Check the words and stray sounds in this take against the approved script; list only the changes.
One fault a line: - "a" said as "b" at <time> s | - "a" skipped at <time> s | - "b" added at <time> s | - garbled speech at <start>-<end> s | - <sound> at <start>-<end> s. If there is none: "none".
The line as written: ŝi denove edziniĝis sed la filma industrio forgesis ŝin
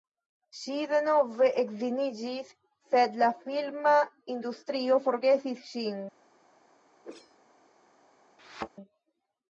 - whoosh at 7.0-7.4 s
- thud at 8.4-8.7 s